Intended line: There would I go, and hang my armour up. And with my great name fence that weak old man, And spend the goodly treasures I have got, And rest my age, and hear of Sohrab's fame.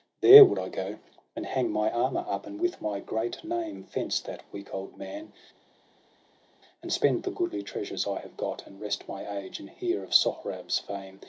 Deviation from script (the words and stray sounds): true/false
false